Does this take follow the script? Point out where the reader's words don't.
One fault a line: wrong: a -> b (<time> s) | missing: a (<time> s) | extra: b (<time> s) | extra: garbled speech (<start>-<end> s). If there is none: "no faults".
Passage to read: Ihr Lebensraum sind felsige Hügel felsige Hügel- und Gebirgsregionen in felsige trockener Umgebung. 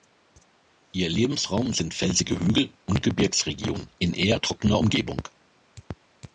missing: felsige Hügel (2.7 s)
wrong: felsige -> eher (4.1 s)